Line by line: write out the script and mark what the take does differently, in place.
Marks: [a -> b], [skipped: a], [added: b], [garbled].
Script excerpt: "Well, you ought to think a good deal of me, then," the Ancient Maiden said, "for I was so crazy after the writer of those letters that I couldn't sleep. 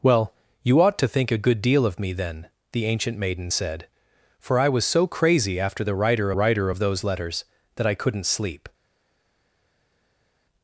"Well, you ought to think a good deal of me, then," the Ancient Maiden said, "for I was so crazy after the writer [added: writer] of those letters that I couldn't sleep.